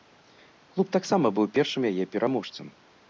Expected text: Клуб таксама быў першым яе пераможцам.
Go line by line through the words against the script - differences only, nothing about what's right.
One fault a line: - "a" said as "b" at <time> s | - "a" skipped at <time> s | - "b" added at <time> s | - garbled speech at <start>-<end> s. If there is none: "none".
none